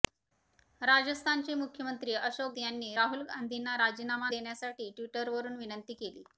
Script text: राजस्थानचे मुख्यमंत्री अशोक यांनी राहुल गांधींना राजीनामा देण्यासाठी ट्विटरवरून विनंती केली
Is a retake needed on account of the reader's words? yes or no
no